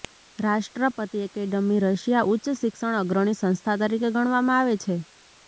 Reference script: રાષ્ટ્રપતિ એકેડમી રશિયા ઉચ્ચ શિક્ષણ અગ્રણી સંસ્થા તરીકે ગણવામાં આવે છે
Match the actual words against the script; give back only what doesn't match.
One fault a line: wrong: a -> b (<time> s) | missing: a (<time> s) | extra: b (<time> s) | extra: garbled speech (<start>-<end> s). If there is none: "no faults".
no faults